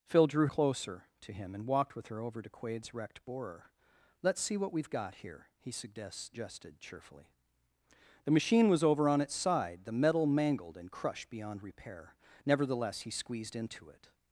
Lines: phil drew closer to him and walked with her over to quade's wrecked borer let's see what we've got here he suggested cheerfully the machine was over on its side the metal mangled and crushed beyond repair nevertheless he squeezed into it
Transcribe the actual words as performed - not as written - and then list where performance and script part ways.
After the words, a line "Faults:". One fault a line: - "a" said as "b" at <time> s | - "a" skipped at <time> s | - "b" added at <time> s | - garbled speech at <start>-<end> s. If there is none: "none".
phil drew closer to him and walked with her over to quade's wrecked borer let's see what we've got here he suggested cheerfully the machine was over on its side the metal mangled and crushed beyond repair nevertheless he squeezed into it
Faults:
none